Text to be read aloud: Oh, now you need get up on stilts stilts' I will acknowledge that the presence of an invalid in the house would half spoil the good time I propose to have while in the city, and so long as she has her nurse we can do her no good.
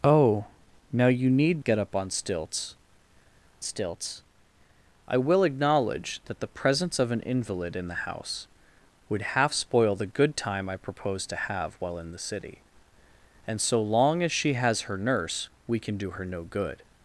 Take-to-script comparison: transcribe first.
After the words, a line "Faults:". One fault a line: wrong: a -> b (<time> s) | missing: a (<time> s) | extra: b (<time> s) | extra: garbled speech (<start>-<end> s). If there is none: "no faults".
Oh, now you need get up on stilts stilts' I will acknowledge that the presence of an invalid in the house would half spoil the good time I propose to have while in the city, and so long as she has her nurse we can do her no good.
Faults:
no faults